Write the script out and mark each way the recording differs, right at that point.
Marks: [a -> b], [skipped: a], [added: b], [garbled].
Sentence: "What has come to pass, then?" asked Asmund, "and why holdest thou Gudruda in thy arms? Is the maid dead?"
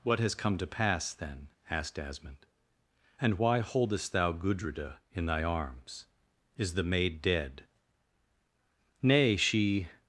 "What has come to pass, then?" asked Asmund, "and why holdest thou Gudruda in thy arms? Is the maid dead?" [added: Nay she]